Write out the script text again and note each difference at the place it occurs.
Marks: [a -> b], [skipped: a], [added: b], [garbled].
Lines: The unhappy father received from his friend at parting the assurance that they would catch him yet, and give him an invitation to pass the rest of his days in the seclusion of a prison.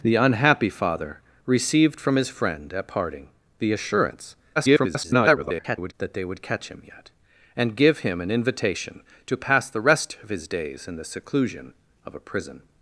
The unhappy father received from his friend at parting the assurance [garbled] that they would catch him yet, and give him an invitation to pass the rest of his days in the seclusion of a prison.